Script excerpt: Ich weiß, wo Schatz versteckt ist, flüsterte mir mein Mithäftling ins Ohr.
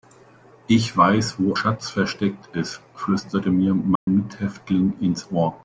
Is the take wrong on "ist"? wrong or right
right